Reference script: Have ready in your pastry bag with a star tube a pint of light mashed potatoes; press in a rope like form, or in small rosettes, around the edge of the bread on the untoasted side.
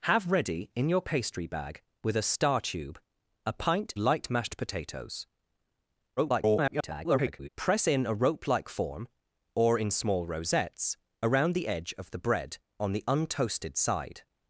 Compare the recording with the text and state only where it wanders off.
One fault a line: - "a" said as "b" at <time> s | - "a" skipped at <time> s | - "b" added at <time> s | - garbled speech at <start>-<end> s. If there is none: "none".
- "of" skipped at 3.9 s
- garbled speech at 6.2-7.5 s